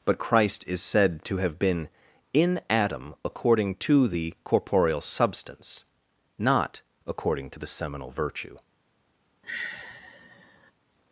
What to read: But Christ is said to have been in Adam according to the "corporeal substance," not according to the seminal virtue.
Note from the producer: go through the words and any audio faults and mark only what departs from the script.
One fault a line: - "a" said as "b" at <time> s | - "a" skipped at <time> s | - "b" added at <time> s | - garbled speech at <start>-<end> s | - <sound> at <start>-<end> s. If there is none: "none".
- sigh at 9.4-10.7 s